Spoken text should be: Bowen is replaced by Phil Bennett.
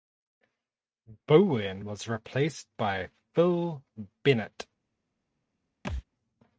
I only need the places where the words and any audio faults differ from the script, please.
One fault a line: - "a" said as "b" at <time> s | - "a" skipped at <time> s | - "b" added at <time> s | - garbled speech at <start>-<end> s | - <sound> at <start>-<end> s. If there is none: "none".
- "is" said as "was" at 1.8 s
- thud at 5.8-6.0 s